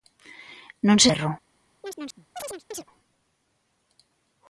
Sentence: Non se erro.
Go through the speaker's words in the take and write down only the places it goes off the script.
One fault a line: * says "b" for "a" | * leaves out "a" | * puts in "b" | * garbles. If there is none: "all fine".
all fine